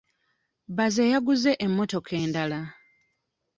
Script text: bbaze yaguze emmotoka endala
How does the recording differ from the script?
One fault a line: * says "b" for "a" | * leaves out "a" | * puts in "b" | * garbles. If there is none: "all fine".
all fine